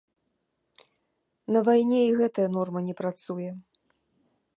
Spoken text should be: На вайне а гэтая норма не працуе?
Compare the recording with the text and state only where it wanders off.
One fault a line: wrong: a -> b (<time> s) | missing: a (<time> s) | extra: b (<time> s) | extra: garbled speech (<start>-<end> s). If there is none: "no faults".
wrong: а -> і (2.0 s)